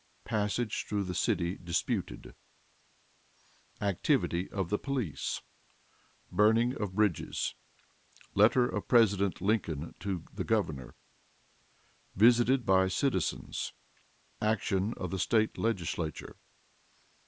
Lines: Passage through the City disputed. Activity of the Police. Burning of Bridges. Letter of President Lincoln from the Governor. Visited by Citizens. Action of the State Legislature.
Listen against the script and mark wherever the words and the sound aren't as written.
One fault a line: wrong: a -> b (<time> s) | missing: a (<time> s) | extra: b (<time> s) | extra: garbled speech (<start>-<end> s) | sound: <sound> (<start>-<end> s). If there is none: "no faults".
wrong: from -> to (10.0 s)